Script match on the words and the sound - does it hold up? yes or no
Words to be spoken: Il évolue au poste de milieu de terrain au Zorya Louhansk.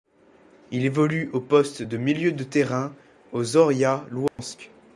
no